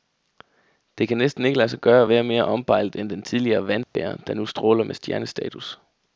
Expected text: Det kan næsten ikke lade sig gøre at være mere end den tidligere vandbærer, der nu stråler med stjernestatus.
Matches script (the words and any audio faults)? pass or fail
fail